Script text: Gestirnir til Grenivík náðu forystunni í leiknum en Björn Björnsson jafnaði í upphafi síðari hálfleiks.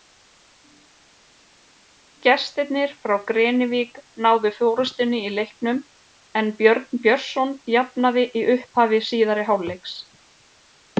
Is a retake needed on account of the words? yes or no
yes